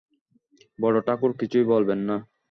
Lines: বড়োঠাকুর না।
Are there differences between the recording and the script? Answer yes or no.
yes